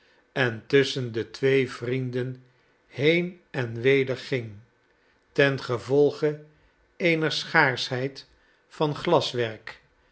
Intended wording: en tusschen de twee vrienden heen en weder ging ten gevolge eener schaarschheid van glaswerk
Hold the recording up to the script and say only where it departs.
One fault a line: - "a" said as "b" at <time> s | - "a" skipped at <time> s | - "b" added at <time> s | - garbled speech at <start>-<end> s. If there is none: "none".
none